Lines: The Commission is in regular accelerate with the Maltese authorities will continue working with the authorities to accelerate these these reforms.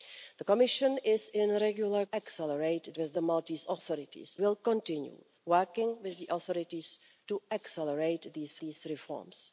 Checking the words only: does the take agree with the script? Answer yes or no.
yes